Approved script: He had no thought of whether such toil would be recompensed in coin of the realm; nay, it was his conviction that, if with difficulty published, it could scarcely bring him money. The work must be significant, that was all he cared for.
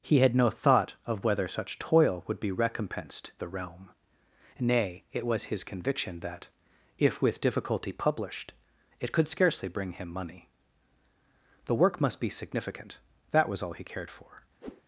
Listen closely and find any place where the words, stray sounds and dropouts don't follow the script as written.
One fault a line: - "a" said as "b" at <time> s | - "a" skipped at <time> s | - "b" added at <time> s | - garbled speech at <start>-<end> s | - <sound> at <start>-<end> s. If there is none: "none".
- "in coin of" skipped at 3.3 s
- whoosh at 14.6-14.8 s